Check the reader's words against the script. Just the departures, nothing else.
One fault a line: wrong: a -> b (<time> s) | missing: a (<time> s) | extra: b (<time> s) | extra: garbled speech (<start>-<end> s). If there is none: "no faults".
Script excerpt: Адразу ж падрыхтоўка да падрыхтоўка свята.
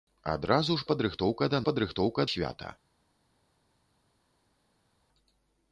no faults